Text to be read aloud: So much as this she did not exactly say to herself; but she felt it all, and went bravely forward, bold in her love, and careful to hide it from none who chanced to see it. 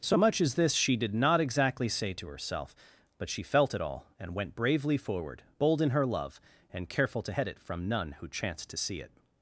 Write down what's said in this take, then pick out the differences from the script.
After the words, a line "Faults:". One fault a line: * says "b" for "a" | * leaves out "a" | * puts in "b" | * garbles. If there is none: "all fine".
So much as this she did not exactly say to herself; but she felt it all, and went bravely forward, bold in her love, and careful to head it from none who chanced to see it.
Faults:
* says "head" for "hide"